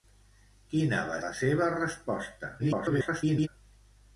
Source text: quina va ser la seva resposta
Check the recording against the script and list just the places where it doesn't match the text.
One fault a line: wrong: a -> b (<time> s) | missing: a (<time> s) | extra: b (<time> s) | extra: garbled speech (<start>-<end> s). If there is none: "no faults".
missing: ser (1.2 s)
extra: garbled speech (2.6-3.5 s)